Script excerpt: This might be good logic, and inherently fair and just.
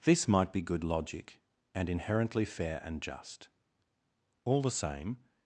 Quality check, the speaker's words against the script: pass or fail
fail